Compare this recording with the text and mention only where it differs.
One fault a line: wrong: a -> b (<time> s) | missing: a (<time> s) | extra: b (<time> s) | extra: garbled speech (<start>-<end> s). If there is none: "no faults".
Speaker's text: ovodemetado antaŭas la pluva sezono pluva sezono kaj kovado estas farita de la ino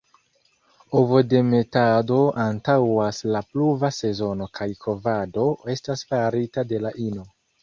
missing: pluva sezono (4.5 s)